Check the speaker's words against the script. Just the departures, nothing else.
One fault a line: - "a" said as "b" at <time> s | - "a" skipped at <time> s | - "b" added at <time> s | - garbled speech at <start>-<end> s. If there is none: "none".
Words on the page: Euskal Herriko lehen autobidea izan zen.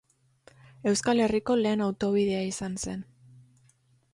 none